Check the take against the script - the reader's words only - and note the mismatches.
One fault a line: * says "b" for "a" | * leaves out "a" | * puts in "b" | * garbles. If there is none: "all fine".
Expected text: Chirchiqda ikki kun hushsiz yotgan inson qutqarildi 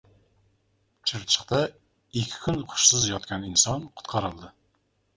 all fine